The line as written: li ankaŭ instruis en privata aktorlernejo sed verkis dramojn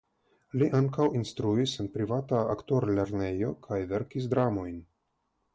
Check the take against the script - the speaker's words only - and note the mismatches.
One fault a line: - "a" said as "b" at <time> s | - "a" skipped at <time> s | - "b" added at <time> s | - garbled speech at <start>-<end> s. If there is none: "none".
- "sed" said as "kaj" at 3.7 s